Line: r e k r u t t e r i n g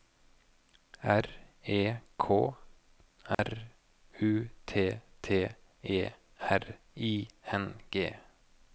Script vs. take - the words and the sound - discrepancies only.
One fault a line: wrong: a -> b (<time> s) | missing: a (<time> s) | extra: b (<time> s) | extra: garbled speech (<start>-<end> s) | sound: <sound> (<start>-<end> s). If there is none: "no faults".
sound: dropout (3.3-3.4 s)